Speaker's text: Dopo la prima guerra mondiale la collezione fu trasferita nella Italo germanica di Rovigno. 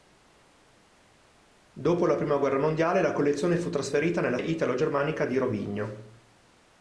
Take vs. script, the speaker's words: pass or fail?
pass